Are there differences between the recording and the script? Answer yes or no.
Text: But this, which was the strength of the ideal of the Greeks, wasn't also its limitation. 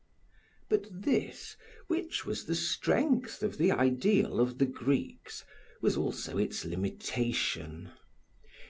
yes